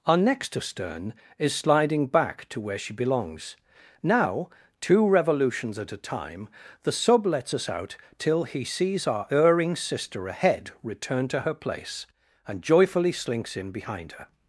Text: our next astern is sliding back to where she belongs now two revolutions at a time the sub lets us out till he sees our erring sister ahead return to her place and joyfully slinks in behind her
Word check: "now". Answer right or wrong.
right